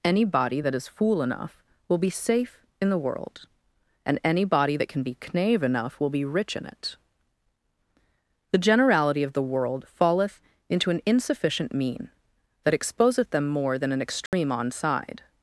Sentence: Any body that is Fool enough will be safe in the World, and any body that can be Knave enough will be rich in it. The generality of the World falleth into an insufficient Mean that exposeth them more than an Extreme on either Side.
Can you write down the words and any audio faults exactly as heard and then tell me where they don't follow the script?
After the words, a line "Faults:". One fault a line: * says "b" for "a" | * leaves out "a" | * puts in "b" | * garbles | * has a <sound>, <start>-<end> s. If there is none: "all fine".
Any body that is Fool enough will be safe in the World, and any body that can be Knave enough will be rich in it. The generality of the World falleth into an insufficient Mean that exposeth them more than an Extreme on Side.
Faults:
* has a dropout, 14.3-14.3 s
* leaves out "either"